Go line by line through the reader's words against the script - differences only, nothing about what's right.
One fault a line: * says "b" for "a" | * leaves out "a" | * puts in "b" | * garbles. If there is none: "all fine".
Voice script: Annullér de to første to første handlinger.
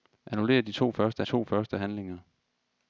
all fine